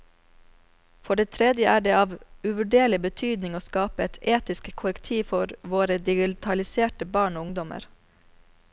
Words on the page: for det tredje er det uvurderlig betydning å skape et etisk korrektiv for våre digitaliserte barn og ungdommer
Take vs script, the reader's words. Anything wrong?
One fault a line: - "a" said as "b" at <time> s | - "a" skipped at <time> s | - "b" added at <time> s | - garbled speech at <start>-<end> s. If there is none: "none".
- "av" added at 2.0 s